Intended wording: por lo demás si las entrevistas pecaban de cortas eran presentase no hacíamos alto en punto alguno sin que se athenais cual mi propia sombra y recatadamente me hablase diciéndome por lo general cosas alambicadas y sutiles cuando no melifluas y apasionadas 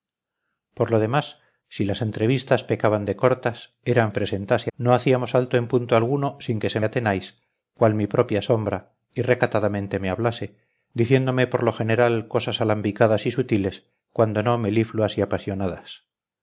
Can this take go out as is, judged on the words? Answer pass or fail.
pass